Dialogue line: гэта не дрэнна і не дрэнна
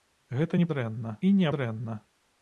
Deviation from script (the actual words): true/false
false